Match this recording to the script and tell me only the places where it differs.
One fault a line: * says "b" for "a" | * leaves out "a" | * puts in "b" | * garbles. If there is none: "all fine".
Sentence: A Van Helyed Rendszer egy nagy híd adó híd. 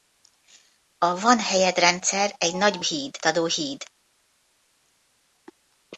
all fine